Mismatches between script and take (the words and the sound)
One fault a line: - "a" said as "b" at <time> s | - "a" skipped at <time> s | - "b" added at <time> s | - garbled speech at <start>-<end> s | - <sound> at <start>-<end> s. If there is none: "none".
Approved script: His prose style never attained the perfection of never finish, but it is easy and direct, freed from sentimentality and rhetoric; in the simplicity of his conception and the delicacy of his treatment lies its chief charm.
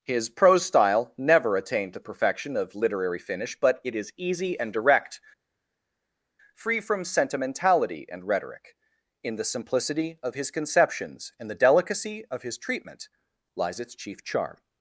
- "never" said as "literary" at 2.7 s
- "freed" said as "free" at 6.5 s
- "conception" said as "conceptions" at 10.5 s